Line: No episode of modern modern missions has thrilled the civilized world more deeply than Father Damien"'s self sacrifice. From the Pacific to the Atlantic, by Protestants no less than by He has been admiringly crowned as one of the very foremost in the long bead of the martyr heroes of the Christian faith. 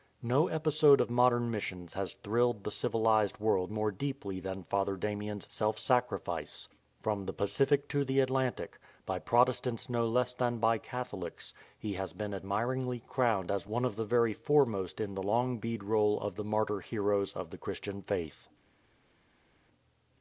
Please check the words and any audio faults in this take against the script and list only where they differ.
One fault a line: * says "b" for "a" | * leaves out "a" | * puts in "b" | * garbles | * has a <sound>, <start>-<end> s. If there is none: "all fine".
* leaves out "modern"
* puts in "Catholics"
* puts in "roll"